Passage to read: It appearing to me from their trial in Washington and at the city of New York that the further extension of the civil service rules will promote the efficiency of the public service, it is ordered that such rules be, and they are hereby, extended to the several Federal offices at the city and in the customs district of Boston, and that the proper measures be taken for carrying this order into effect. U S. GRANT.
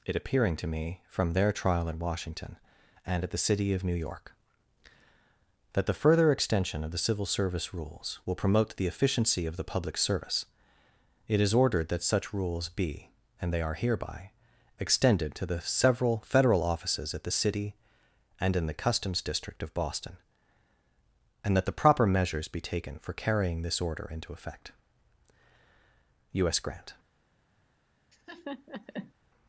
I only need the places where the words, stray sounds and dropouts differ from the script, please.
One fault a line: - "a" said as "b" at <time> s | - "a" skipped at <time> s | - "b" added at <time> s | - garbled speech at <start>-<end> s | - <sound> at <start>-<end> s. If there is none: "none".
- laugh at 28.1-29.1 s